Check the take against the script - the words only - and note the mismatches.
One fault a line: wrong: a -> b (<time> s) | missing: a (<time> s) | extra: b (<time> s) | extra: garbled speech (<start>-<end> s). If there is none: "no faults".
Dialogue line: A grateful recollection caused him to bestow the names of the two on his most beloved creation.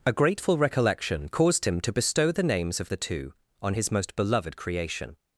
no faults